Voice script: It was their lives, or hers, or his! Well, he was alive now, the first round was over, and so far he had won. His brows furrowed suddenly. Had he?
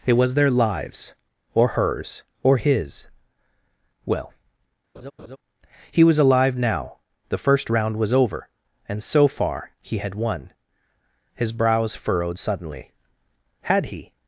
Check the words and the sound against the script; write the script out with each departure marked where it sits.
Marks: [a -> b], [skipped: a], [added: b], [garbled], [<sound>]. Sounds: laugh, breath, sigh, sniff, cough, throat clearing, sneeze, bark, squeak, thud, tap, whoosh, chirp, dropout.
It was their lives, or hers, or his! Well, [laugh] he was alive now, the first round was over, and so far he had won. His brows furrowed suddenly. Had he?